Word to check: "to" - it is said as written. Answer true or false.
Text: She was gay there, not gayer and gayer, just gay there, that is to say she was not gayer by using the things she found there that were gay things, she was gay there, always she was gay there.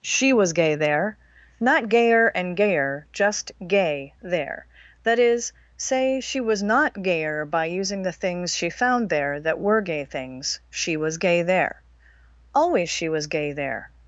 false